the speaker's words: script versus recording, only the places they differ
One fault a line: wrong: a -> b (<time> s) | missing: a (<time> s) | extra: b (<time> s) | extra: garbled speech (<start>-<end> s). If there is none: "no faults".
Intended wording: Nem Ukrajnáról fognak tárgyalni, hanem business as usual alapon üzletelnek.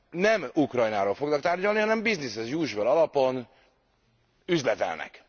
no faults